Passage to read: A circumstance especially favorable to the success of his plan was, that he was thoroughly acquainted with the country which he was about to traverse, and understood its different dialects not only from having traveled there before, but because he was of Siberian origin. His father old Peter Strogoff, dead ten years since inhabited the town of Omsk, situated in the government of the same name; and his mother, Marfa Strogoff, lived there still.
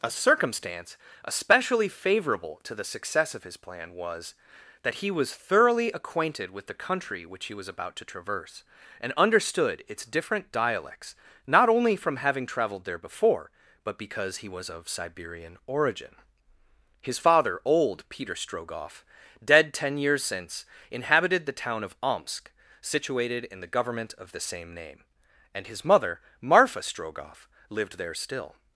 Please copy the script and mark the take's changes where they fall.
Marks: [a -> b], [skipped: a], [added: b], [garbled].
A circumstance especially favorable to the success of his plan was, that he was thoroughly acquainted with the country which he was about to traverse, and understood its different dialects not only from having traveled there before, but because he was of Siberian origin. His father old Peter Strogoff, dead ten years since inhabited the town of Omsk, situated in the government of the same name; and his mother, Marfa Strogoff, lived there still.